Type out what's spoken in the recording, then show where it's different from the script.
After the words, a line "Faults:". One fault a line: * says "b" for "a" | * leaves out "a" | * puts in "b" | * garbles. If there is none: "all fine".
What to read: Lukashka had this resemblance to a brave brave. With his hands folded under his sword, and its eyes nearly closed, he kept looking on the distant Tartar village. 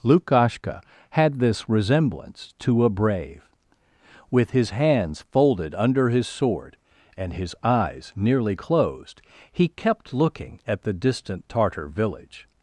Lukashka had this resemblance to a brave. With his hands folded under his sword, and his eyes nearly closed, he kept looking at the distant Tartar village.
Faults:
* leaves out "brave"
* says "his" for "its"
* says "at" for "on"